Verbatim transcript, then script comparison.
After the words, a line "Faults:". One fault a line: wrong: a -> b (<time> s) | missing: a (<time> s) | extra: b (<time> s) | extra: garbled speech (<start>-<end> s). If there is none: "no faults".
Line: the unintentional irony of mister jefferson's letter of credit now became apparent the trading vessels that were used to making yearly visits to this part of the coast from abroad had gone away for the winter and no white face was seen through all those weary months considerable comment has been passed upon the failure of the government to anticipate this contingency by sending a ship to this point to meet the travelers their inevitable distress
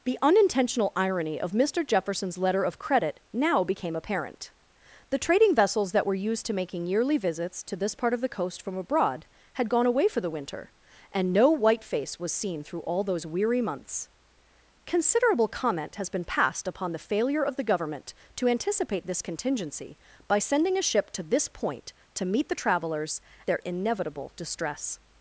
the unintentional irony of mister jefferson's letter of credit now became apparent the trading vessels that were used to making yearly visits to this part of the coast from abroad had gone away for the winter and no white face was seen through all those weary months considerable comment has been passed upon the failure of the government to anticipate this contingency by sending a ship to this point to meet the travelers their inevitable distress
Faults:
no faults